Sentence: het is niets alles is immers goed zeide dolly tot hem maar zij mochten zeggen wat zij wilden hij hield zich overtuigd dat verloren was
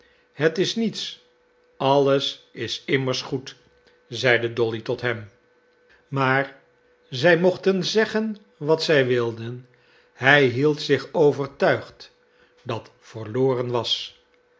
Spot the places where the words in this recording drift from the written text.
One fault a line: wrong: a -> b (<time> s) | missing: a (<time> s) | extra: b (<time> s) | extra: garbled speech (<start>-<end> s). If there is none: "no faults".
no faults